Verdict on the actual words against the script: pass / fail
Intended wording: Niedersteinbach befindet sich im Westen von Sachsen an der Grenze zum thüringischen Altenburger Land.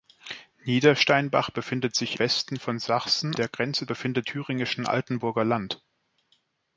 fail